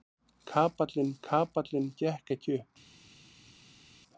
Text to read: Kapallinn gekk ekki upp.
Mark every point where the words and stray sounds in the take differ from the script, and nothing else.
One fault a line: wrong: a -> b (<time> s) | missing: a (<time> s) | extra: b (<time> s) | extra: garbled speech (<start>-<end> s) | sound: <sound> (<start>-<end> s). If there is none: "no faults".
extra: kapallinn (1.3 s)